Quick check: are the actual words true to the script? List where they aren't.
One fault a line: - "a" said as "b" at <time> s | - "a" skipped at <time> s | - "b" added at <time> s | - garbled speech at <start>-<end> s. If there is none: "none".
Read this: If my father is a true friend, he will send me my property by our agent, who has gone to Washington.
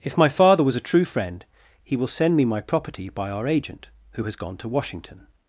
- "is" said as "was" at 0.6 s